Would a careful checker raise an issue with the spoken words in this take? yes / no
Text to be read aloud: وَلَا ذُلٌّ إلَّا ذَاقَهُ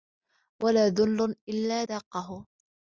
no